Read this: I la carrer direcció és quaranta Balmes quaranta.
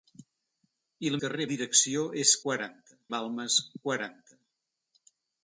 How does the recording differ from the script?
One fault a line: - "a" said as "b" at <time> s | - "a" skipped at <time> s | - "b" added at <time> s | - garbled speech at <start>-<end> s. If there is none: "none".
none